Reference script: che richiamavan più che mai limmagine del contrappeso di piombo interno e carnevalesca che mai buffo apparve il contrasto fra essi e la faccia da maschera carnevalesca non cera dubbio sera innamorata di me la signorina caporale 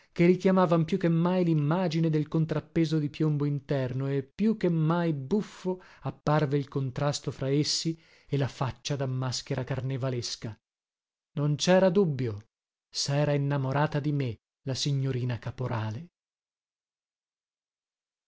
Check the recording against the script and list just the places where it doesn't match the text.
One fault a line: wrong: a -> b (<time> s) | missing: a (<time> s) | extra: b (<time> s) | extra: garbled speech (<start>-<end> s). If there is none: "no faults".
wrong: carnevalesca -> più (4.2 s)